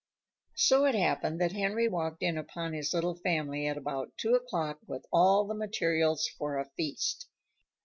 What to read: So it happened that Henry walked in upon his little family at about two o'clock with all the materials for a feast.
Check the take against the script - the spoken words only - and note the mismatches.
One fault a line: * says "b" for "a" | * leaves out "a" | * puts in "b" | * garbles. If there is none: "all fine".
all fine